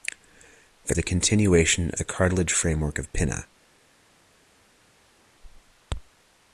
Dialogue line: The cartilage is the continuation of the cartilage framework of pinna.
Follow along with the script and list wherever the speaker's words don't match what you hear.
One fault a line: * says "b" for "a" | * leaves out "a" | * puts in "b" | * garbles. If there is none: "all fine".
* leaves out "cartilage is"
* leaves out "of"